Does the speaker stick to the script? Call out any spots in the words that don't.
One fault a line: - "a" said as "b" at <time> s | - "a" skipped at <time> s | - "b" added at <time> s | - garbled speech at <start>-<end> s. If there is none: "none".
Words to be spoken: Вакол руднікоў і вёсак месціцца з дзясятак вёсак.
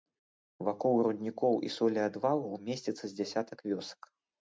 - "вёсак" said as "солеадвалаў" at 1.8 s